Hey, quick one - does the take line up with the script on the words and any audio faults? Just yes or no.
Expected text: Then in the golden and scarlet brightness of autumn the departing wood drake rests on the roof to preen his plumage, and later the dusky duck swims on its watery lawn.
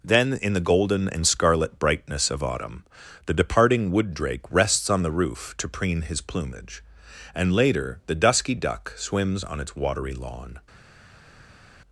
yes